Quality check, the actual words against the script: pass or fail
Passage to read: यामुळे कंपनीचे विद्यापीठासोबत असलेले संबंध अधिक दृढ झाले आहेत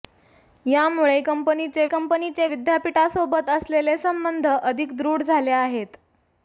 fail